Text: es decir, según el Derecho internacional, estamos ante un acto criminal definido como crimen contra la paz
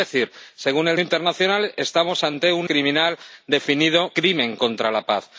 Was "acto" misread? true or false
true